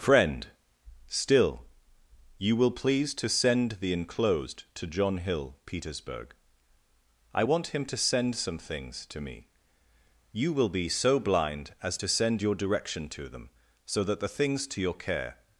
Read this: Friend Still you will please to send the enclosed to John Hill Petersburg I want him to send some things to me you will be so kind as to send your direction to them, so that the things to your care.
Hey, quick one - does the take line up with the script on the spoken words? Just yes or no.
no